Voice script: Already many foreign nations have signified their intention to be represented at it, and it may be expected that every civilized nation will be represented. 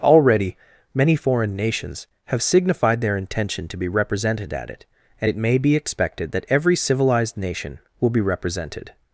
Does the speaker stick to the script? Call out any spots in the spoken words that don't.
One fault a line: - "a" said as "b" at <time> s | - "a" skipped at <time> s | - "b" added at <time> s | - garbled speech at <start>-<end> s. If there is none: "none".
none